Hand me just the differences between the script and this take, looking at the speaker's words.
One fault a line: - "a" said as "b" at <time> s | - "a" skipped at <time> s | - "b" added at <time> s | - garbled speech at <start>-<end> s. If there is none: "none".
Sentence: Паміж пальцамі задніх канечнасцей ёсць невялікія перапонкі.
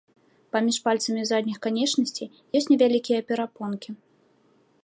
none